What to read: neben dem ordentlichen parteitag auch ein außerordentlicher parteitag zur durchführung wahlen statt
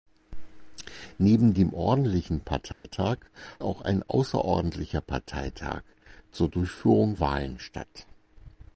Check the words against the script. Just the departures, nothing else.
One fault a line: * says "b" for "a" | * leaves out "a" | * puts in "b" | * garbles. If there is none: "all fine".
all fine